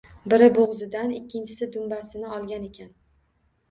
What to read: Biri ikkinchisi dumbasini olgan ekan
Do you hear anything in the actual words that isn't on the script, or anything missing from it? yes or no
yes